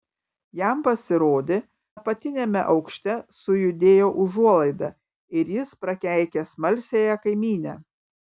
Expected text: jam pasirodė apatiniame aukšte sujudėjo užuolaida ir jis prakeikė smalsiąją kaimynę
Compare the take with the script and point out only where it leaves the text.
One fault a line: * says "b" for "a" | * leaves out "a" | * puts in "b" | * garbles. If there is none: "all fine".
all fine